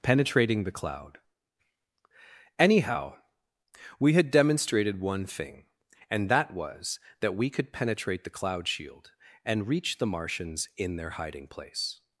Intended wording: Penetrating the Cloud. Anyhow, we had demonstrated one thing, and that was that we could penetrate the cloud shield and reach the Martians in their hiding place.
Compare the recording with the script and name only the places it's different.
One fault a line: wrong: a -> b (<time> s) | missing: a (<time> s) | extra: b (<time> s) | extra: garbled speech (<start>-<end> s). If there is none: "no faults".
no faults